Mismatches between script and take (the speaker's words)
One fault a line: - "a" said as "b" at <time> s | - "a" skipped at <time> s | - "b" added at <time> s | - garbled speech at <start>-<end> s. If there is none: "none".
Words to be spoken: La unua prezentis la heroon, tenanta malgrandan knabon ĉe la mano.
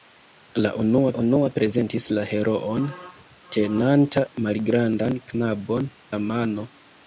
- "unua" added at 1.2 s
- "ĉe" skipped at 5.9 s